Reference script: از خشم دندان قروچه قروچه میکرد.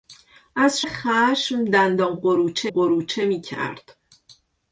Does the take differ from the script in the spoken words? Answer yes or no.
no